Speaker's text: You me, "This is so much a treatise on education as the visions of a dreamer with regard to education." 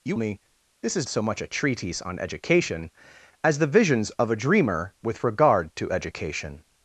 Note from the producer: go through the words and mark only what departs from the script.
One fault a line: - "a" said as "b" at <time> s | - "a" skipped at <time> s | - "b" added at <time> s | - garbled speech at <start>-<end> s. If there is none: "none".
none